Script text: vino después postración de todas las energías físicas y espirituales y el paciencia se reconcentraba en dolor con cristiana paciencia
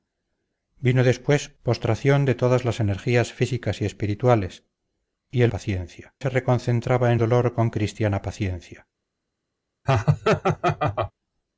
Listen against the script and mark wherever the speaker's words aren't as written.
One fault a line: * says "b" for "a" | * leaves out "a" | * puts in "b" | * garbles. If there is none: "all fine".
all fine